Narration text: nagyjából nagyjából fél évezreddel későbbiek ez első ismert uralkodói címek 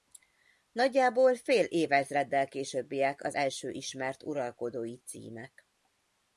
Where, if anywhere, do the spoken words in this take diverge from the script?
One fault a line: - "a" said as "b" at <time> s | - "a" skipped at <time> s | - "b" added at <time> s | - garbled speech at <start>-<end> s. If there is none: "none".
- "nagyjából" skipped at 1.4 s
- "ez" said as "az" at 3.2 s